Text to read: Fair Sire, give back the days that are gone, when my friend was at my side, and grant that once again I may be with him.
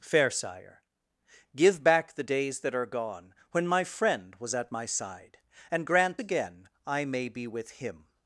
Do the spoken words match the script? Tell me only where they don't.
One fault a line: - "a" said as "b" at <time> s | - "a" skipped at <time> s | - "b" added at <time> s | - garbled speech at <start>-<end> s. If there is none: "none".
- "that once" skipped at 6.2 s